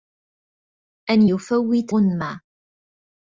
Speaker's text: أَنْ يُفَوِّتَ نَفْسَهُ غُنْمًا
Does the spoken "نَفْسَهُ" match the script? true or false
false